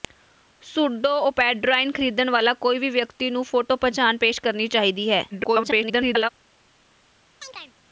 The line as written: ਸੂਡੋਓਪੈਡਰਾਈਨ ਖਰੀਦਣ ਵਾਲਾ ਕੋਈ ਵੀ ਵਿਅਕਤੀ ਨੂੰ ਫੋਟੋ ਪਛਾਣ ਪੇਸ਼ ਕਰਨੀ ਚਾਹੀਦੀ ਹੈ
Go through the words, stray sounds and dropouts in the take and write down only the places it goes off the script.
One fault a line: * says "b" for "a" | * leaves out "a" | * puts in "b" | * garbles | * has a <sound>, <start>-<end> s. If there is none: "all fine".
* garbles
* has a chirp, 7.4-7.7 s